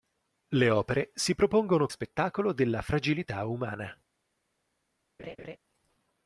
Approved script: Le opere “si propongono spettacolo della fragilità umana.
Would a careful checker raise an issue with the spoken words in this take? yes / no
no